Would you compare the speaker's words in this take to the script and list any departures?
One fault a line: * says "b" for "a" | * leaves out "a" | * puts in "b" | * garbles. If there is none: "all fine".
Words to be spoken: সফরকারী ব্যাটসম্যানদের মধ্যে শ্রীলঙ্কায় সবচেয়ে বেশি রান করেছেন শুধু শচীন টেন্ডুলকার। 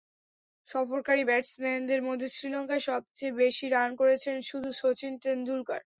all fine